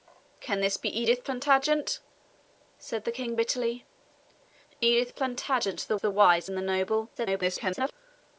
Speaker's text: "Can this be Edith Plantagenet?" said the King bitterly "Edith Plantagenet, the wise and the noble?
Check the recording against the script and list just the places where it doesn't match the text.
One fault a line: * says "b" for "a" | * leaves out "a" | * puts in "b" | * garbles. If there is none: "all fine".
* puts in "the"
* garbles